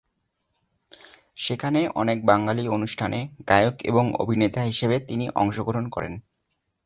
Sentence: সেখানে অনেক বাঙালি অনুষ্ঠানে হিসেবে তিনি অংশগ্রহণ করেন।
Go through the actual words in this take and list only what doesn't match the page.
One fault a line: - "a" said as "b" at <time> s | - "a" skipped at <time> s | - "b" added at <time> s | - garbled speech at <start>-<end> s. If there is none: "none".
- "গায়ক এবং অভিনেতা" added at 3.5 s